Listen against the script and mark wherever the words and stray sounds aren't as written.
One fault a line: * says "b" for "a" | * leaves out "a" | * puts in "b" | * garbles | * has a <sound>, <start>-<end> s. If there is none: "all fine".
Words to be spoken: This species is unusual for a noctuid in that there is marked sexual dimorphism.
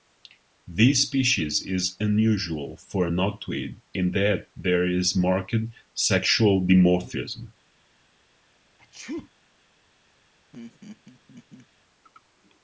* has a sneeze, 8.8-9.3 s
* has a laugh, 10.5-11.7 s